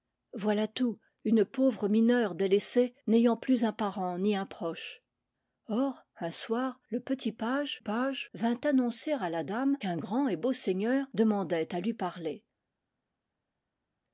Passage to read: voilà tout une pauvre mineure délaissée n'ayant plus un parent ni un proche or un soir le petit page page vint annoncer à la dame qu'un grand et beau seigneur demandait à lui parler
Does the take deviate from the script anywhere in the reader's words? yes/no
no